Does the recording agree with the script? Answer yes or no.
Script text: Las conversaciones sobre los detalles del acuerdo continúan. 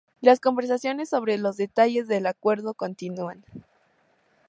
yes